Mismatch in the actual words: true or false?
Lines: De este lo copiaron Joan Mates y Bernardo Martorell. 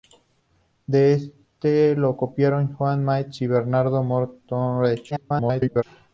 true